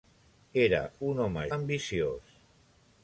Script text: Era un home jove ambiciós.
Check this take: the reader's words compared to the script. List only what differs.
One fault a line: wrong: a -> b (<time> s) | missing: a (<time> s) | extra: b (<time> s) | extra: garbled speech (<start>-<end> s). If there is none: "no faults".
missing: jove (1.4 s)